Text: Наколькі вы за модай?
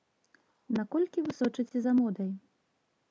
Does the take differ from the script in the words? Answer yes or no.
yes